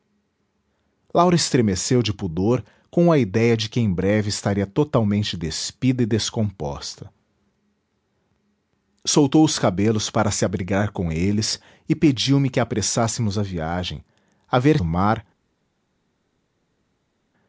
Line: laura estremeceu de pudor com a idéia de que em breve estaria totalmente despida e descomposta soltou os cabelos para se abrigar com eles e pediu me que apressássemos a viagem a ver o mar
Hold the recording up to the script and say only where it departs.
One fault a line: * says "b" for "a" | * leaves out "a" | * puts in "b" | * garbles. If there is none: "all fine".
all fine